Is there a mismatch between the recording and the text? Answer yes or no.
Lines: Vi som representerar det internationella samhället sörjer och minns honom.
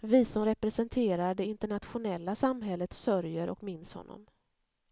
no